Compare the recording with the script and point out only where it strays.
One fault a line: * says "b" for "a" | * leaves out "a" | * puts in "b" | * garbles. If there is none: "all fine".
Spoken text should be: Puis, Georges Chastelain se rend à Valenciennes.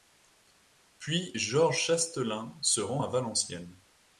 all fine